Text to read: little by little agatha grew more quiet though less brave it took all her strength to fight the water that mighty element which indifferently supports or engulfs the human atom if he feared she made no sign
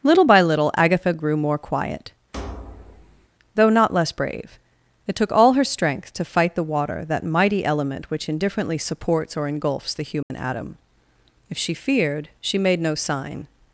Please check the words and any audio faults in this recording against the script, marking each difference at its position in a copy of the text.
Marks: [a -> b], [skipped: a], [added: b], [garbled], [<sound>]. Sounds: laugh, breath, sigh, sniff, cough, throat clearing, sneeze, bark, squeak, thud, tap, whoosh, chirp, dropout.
little by little agatha grew more quiet [thud] though [added: not] less brave it took all her strength to fight the water that mighty element which indifferently supports or engulfs the human [dropout] atom if [he -> she] feared she made no sign